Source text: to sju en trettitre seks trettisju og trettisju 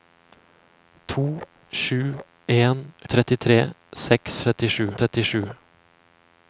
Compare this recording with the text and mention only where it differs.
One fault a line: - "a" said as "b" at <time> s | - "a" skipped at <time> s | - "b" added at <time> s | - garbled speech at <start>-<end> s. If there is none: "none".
none